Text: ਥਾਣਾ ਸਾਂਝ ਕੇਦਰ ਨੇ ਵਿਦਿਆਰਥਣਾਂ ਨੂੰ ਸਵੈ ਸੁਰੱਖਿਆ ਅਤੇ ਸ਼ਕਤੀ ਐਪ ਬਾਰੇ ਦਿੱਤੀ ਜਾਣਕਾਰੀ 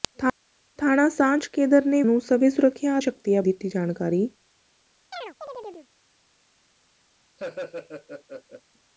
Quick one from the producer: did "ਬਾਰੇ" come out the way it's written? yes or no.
no